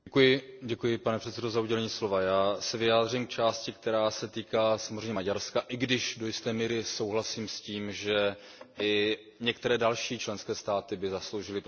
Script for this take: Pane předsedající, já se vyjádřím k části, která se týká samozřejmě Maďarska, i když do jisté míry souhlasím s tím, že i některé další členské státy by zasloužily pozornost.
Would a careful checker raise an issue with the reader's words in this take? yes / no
no